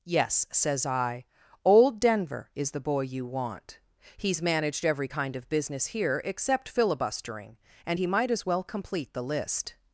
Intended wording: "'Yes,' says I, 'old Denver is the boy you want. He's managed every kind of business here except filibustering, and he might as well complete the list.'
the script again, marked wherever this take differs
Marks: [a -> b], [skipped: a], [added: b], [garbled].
"'Yes,' says I, 'old Denver is the boy you want. He's managed every kind of business here except filibustering, and he might as well complete the list.'